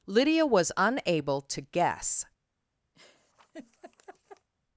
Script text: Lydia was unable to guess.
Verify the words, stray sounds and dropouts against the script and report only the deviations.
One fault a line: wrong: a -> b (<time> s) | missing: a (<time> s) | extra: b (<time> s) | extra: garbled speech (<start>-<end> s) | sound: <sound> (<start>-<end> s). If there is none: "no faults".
sound: laugh (2.9-4.5 s)